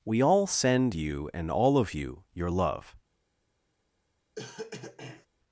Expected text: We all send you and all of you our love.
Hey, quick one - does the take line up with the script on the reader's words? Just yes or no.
no